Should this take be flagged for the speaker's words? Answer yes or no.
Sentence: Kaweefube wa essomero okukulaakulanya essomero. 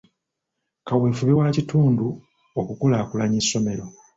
yes